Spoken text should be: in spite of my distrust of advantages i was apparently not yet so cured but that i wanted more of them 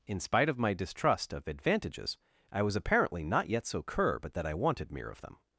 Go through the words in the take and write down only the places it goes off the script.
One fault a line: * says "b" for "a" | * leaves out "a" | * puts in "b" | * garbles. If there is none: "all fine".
* says "cur" for "cured"
* says "mere" for "more"